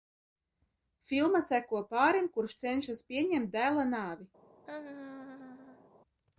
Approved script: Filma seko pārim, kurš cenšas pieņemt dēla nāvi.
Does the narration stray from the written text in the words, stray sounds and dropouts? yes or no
yes